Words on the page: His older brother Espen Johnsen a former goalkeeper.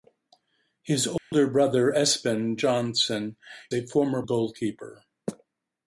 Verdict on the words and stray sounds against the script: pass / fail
fail